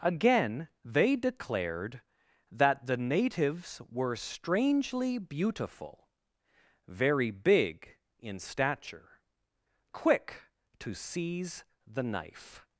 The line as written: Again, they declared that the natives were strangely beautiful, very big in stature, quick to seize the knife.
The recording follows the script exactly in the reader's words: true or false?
true